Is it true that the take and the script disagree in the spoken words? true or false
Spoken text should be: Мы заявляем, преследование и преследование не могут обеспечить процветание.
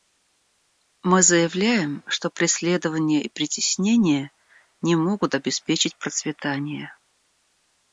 true